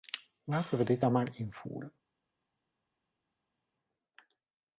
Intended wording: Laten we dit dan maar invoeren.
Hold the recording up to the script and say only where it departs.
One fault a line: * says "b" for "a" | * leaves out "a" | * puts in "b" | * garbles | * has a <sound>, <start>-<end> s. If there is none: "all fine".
all fine